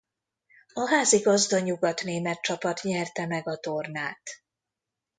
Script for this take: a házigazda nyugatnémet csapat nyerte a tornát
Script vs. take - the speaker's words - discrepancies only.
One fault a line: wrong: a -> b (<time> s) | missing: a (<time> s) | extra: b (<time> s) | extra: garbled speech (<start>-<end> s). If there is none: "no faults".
extra: meg (3.2 s)